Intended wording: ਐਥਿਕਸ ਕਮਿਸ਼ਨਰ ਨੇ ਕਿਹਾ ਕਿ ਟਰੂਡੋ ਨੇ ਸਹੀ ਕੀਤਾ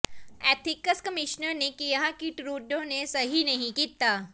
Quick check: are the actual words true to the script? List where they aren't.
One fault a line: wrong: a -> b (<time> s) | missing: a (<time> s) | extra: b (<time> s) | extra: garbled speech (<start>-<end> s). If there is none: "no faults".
extra: ਨਹੀਂ (3.4 s)